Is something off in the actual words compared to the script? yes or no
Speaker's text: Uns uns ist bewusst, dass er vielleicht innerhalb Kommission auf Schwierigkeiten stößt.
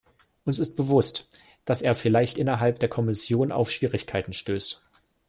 yes